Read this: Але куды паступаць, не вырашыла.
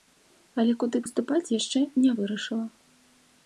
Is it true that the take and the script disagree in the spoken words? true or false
true